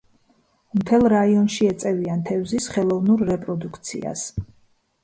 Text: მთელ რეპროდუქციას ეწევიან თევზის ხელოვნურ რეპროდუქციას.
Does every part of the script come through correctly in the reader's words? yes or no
no